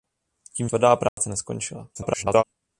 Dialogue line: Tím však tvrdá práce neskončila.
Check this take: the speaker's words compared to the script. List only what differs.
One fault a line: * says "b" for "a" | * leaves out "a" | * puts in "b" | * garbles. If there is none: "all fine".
* leaves out "však"
* garbles